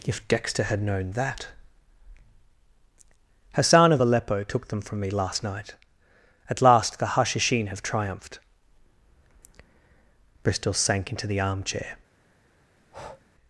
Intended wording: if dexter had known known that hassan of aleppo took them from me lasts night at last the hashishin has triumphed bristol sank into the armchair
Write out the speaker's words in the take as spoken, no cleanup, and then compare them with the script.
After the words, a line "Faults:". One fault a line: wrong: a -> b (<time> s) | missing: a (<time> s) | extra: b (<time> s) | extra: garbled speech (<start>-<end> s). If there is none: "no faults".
if dexter had known that hassan of aleppo took them from me last night at last the hashishin have triumphed bristol sank into the armchair
Faults:
missing: known (1.1 s)
wrong: lasts -> last (5.1 s)
wrong: has -> have (7.7 s)